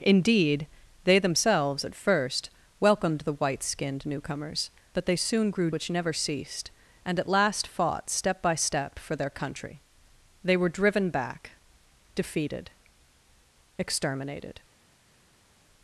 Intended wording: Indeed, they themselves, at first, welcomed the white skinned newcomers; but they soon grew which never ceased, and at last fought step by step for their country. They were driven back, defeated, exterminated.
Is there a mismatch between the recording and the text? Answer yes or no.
no